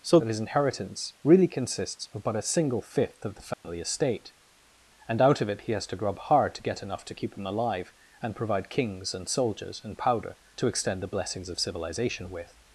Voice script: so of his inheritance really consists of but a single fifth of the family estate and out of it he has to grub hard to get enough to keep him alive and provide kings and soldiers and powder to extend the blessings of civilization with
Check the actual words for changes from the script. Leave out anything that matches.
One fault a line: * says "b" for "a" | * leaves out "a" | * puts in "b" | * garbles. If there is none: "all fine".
all fine